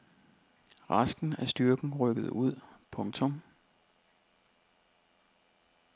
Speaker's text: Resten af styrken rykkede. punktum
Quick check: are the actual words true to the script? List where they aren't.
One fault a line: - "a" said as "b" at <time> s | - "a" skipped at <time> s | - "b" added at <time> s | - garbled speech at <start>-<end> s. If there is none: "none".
- "ud" added at 2.3 s